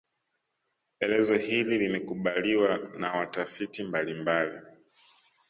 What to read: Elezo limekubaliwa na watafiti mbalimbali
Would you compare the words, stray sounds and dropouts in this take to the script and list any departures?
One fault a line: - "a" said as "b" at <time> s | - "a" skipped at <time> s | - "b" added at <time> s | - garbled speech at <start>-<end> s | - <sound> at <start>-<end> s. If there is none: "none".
- "hili" added at 1.4 s